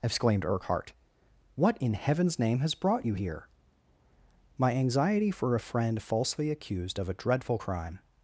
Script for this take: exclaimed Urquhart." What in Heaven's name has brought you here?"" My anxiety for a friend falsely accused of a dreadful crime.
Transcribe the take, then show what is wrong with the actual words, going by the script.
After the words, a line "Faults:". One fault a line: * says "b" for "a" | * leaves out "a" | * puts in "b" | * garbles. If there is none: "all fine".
exclaimed Urquhart." What in Heaven's name has brought you here?"" My anxiety for a friend falsely accused of a dreadful crime.
Faults:
all fine